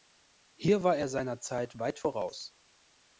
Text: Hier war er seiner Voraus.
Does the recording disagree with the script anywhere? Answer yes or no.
yes